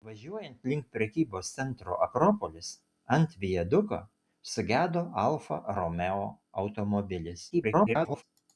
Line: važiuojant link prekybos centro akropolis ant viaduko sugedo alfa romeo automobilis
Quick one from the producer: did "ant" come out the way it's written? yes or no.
yes